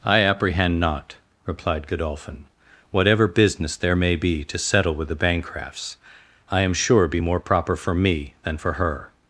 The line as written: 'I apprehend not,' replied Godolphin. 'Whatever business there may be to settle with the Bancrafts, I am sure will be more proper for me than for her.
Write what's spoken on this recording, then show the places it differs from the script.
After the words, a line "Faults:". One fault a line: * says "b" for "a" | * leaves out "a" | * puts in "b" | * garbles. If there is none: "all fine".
'I apprehend not,' replied Godolphin. 'Whatever business there may be to settle with the Bancrafts, I am sure be more proper for me than for her.
Faults:
* leaves out "will"